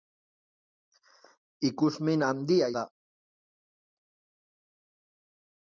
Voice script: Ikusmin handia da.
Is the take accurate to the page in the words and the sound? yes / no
yes